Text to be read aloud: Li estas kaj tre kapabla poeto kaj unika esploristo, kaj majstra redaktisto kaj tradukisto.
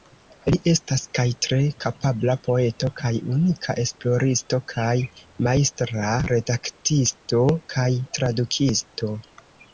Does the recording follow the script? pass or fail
pass